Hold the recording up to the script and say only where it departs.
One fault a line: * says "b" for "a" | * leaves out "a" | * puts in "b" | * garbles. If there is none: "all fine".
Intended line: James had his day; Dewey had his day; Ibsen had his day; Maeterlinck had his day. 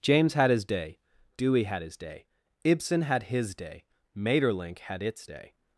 * says "its" for "his"